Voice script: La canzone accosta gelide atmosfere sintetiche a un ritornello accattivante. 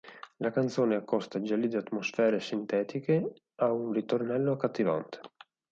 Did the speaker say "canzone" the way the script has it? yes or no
yes